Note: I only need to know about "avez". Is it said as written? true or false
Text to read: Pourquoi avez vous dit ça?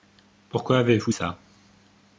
true